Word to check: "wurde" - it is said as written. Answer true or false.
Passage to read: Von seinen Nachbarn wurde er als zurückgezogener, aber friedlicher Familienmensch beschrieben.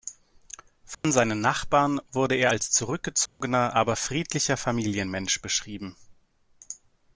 true